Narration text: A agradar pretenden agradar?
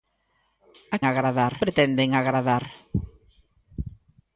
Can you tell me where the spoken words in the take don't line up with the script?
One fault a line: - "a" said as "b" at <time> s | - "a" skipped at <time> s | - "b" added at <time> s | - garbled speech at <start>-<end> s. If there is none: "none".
none